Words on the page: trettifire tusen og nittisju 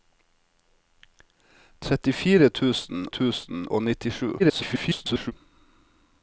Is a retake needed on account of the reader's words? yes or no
yes